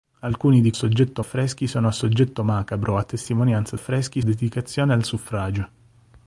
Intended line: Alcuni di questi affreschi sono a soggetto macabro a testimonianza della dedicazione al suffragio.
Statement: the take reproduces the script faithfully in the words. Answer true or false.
false